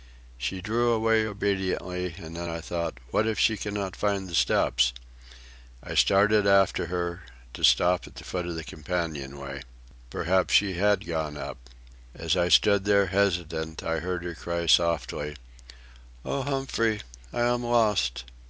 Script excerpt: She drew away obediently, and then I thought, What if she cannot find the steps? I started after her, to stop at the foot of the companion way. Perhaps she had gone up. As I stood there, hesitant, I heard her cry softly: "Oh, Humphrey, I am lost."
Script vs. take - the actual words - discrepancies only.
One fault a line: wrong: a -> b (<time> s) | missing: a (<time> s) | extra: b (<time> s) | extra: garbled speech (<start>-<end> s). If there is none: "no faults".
no faults